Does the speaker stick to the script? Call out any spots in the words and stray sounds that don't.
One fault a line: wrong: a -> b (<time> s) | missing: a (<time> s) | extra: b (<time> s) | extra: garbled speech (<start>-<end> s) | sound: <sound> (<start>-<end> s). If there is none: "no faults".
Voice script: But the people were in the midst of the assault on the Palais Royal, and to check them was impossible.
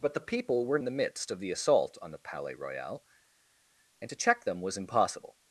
no faults